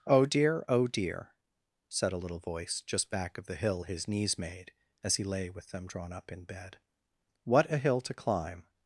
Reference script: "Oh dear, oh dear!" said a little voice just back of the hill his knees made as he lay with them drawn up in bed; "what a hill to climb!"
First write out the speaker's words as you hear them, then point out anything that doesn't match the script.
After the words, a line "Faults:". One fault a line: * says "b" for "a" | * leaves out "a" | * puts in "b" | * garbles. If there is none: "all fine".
"Oh dear, oh dear!" said a little voice just back of the hill his knees made as he lay with them drawn up in bed; "what a hill to climb!"
Faults:
all fine